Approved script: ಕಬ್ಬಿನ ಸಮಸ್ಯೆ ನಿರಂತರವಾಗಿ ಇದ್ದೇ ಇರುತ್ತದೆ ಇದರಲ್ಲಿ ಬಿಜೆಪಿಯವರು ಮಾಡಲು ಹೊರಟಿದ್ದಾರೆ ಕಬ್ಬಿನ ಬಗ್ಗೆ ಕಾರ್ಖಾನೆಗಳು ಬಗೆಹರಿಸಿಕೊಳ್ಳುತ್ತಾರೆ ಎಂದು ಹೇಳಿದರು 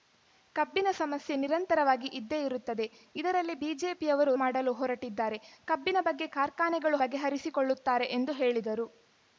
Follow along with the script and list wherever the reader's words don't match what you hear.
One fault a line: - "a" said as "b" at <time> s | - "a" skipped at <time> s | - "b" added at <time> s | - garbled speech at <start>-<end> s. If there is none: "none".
none